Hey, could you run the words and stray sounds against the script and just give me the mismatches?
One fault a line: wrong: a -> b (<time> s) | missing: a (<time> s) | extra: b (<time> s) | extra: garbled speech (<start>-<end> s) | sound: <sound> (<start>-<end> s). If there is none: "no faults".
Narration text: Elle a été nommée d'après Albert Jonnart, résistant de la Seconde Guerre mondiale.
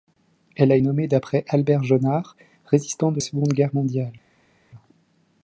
missing: été (0.8 s)
missing: la (3.2 s)